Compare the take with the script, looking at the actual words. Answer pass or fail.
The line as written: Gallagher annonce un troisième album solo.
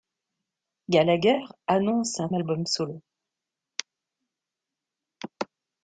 fail